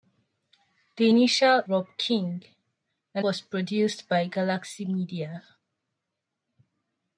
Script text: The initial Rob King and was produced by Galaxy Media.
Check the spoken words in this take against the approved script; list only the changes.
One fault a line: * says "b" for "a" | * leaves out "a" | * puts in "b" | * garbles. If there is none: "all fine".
all fine